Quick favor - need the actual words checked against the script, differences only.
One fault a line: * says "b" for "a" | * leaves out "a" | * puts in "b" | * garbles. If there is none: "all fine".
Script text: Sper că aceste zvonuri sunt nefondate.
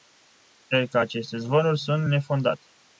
all fine